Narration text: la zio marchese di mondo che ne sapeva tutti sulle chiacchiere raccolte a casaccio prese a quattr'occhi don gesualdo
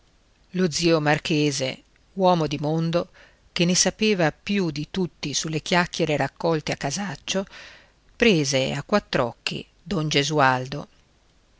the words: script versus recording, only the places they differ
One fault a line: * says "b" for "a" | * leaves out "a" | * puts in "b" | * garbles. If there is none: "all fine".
* says "lo" for "la"
* puts in "uomo"
* puts in "più di"